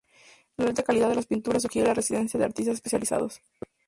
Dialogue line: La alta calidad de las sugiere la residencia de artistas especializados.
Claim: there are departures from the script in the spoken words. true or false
true